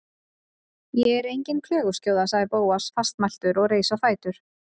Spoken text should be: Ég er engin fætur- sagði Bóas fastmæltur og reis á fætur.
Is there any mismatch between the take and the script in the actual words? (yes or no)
yes